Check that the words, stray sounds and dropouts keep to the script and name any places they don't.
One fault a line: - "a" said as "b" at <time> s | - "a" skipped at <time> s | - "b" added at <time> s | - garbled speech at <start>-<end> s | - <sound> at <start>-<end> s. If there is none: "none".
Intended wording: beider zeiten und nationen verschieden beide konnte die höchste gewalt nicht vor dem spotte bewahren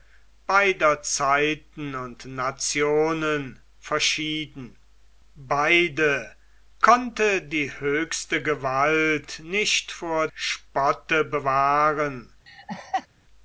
- "dem" skipped at 10.3 s
- laugh at 12.5-13.1 s